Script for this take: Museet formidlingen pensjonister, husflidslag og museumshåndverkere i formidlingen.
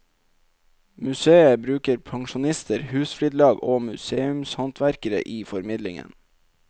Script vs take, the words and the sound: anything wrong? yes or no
yes